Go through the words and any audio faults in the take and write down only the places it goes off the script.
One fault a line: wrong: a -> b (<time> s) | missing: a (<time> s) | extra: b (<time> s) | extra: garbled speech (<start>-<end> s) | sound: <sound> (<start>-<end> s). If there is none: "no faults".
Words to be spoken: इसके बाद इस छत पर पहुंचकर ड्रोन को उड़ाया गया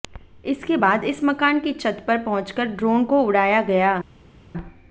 extra: मकान की (1.2 s)